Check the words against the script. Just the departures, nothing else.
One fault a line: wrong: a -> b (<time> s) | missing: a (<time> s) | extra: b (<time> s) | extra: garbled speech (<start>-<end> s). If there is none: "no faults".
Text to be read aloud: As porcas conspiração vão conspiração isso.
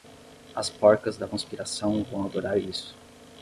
extra: da (1.1 s)
wrong: conspiração -> adorar (2.2 s)